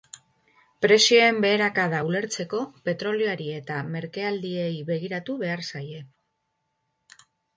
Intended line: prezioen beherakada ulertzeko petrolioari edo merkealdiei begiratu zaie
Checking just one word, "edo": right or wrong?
wrong